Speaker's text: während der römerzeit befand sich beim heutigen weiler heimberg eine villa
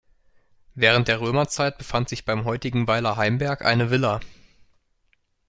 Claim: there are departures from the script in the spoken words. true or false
false